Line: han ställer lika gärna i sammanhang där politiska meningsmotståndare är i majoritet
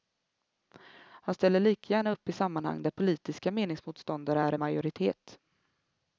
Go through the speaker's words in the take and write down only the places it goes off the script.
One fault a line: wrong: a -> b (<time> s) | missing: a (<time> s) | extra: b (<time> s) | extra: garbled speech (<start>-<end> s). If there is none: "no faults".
extra: upp (2.1 s)